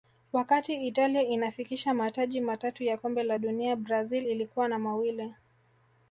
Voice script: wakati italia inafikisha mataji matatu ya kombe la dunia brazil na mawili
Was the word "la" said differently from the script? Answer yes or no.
no